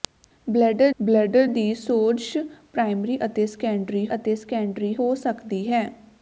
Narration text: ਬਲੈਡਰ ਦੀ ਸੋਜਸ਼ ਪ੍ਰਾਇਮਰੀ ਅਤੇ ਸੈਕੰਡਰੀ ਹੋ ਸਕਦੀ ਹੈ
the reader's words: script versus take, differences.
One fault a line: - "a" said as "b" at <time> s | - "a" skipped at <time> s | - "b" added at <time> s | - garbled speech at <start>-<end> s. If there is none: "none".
- "ਬਲੈਡਰ" added at 1.0 s
- "ਅਤੇ ਸੈਕੰਡਰੀ" added at 4.1 s